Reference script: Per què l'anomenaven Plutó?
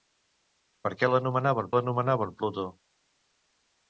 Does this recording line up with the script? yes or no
no